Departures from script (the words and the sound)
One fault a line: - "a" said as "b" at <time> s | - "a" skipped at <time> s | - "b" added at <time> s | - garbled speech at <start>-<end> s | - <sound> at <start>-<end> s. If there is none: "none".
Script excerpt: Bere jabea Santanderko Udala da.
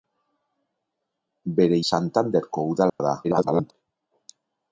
- "jabea" skipped at 1.8 s
- dropout at 2.9-3.0 s
- garbled speech at 3.2-3.7 s